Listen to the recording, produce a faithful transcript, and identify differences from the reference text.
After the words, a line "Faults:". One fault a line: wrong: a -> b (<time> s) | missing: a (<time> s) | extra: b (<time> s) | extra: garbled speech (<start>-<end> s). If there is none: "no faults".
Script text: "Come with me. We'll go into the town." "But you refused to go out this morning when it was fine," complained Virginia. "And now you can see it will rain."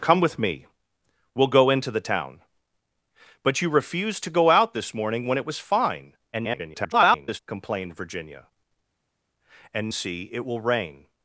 "Come with me. We'll go into the town." "But you refused to go out this morning when it was fine," [garbled] complained Virginia. "And see it will rain."
Faults:
extra: garbled speech (6.3-7.4 s)
missing: now you can (9.9 s)